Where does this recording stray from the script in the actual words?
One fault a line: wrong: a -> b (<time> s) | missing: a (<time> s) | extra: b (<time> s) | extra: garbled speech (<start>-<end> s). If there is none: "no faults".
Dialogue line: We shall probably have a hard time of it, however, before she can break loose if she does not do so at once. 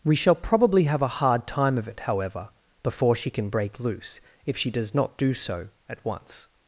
no faults